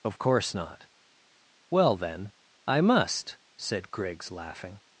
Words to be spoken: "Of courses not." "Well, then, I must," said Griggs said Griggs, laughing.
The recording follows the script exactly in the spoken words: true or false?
false